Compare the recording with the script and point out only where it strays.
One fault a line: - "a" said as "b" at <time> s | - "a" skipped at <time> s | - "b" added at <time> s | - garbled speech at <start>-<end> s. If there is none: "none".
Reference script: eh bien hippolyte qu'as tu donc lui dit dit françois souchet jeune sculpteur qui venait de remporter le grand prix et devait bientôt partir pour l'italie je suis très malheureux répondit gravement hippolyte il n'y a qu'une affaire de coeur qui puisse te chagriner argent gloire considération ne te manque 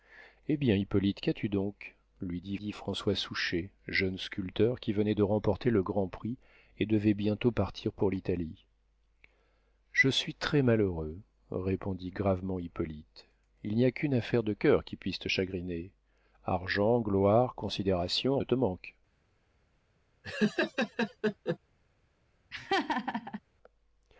none